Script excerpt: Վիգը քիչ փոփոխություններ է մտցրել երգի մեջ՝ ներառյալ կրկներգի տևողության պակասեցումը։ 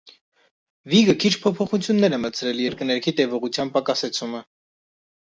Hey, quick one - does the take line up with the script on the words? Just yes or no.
no